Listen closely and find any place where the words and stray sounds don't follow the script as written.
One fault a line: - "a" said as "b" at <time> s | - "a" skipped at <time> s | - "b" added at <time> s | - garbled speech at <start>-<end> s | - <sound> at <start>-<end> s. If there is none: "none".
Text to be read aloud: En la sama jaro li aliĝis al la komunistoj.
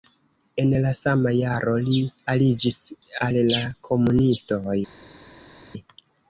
none